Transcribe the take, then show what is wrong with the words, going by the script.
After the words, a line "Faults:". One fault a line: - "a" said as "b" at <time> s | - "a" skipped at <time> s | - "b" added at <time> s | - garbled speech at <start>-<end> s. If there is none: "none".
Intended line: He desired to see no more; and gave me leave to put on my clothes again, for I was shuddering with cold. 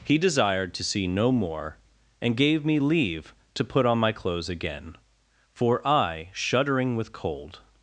He desired to see no more; and gave me leave to put on my clothes again, for I shuddering with cold.
Faults:
- "was" skipped at 6.3 s